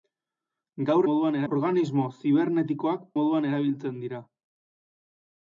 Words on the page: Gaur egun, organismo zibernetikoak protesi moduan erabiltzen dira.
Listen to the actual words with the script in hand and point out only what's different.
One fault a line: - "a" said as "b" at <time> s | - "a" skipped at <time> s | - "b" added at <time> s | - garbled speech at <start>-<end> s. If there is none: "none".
- "egun" said as "moduan" at 1.1 s
- "protesi" skipped at 3.1 s